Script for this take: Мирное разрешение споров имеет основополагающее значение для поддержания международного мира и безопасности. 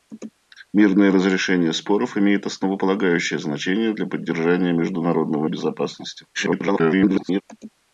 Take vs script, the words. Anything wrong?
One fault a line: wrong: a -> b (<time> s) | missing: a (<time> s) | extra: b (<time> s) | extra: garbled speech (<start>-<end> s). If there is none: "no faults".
missing: мира (5.5 s)
extra: garbled speech (6.3-7.4 s)